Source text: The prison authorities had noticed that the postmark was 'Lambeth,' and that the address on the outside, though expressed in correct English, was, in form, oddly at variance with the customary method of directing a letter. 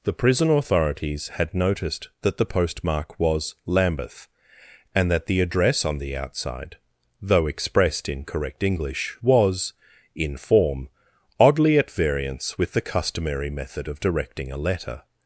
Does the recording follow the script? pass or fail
pass